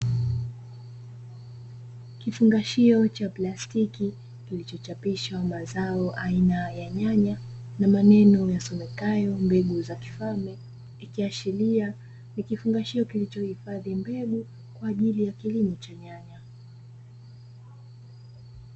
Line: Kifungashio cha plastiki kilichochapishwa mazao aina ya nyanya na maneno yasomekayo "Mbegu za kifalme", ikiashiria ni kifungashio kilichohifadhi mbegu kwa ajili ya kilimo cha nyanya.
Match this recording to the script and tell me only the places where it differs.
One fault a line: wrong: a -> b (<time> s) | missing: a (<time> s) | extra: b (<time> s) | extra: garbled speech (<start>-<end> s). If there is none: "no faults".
no faults